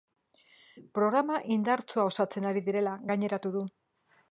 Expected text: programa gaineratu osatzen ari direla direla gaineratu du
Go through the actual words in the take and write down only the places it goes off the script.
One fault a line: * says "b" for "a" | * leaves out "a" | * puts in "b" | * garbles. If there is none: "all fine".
* says "indartsua" for "gaineratu"
* leaves out "direla"